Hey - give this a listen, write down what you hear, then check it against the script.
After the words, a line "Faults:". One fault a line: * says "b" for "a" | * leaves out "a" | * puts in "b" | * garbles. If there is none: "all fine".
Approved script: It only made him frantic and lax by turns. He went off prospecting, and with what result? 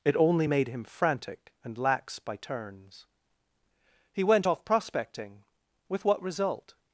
It only made him frantic and lax by turns. He went off prospecting, with what result?
Faults:
* leaves out "and"